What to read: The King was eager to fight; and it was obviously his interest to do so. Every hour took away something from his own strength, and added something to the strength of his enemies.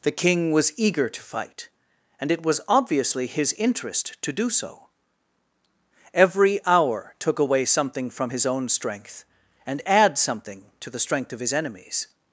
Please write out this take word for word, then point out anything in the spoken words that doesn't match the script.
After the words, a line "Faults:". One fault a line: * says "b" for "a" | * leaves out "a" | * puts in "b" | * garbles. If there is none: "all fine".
The King was eager to fight; and it was obviously his interest to do so. Every hour took away something from his own strength, and add something to the strength of his enemies.
Faults:
* says "add" for "added"